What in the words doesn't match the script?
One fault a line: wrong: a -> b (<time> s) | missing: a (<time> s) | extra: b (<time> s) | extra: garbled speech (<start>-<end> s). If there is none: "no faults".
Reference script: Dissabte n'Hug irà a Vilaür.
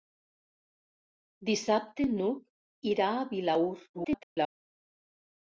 extra: garbled speech (3.9-4.5 s)